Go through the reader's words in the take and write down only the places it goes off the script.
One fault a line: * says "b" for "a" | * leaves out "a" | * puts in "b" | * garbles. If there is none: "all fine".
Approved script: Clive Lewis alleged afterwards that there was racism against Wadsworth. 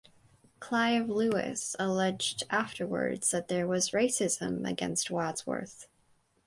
all fine